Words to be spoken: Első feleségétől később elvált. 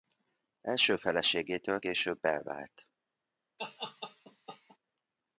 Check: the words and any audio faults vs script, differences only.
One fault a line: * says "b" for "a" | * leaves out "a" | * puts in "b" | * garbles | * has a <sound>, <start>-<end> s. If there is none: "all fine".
* has a laugh, 3.6-4.8 s